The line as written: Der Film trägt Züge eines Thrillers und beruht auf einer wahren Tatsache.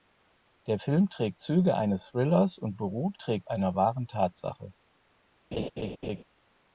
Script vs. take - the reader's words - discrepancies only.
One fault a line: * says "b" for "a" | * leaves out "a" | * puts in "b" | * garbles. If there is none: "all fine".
* says "trägt" for "auf"